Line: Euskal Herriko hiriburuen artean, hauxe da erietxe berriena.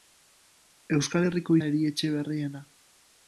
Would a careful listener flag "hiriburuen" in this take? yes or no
yes